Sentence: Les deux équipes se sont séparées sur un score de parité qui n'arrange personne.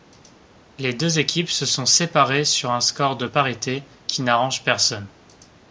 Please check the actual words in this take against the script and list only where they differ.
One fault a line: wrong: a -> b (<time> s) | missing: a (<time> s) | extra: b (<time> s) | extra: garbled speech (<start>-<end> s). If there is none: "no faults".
no faults